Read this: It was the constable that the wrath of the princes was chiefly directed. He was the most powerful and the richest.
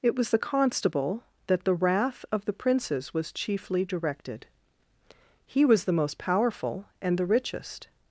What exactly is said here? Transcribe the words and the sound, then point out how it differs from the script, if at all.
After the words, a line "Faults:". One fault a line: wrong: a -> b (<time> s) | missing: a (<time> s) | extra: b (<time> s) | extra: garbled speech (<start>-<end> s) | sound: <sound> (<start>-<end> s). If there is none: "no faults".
It was the constable that the wrath of the princes was chiefly directed. He was the most powerful and the richest.
Faults:
no faults